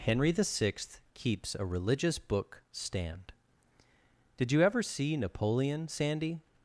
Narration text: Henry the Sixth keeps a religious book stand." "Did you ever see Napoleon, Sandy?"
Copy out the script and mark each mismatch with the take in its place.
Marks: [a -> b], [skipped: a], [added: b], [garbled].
Henry the Sixth keeps a religious book stand." "Did you ever see Napoleon, Sandy?"